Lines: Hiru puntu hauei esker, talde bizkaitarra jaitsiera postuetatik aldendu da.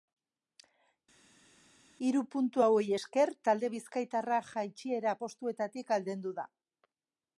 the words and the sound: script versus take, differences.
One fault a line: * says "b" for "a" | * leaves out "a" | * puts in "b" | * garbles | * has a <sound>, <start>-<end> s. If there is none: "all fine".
all fine